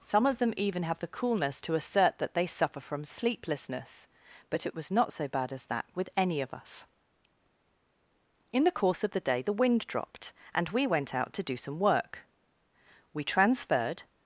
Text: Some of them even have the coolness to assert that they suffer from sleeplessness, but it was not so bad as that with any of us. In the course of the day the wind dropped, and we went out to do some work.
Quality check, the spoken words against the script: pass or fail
fail